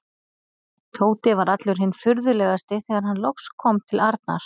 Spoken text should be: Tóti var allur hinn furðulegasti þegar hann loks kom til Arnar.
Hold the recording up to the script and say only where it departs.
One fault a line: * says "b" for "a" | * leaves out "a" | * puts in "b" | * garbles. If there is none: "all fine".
all fine